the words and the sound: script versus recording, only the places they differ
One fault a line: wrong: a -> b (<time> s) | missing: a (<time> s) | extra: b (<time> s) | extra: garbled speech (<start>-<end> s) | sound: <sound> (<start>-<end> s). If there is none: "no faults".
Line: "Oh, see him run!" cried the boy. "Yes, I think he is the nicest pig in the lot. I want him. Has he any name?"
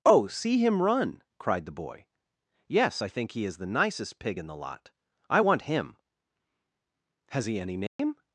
sound: dropout (7.9-8.0 s)